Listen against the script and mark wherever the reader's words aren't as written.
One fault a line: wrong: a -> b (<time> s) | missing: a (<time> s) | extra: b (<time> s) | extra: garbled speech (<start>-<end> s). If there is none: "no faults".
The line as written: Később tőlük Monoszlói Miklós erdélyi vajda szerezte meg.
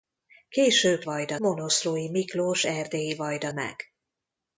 wrong: tőlük -> vajda (1.0 s)
missing: szerezte (3.5 s)